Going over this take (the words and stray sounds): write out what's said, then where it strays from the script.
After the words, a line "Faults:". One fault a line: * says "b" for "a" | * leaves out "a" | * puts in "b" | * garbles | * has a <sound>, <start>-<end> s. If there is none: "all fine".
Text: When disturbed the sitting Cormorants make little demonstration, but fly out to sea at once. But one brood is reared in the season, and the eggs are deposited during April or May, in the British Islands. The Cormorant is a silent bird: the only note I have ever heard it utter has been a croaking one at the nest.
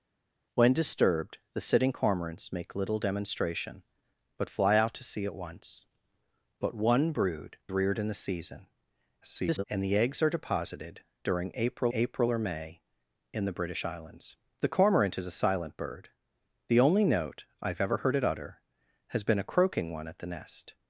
When disturbed the sitting Cormorants make little demonstration, but fly out to sea at once. But one brood reared in the season, [garbled] and the eggs are deposited during April April or May, in the British Islands. The Cormorant is a silent bird: the only note I have ever heard it utter has been a croaking one at the nest.
Faults:
* leaves out "is"
* garbles
* puts in "April"